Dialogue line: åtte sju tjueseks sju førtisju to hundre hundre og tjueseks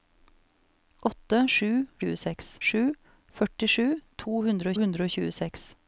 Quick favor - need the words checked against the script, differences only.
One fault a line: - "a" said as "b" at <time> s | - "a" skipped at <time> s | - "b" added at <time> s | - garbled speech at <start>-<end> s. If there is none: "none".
none